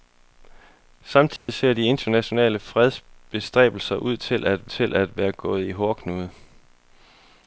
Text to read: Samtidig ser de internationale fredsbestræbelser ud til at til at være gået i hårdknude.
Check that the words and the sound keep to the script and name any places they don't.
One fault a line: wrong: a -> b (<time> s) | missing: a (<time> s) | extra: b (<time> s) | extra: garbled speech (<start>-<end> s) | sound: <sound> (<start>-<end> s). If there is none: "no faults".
sound: dropout (1.4-1.5 s)